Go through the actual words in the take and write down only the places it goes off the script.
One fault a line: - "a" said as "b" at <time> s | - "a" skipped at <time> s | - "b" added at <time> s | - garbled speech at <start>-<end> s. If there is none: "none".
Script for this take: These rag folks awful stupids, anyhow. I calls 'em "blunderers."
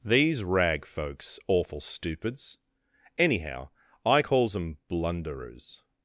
none